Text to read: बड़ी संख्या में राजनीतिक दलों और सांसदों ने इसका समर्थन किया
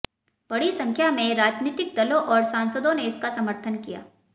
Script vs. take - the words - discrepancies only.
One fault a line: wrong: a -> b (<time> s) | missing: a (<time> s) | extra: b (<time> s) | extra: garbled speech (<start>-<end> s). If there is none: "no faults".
no faults